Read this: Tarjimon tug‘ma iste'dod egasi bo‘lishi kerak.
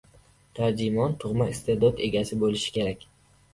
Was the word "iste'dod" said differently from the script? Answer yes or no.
no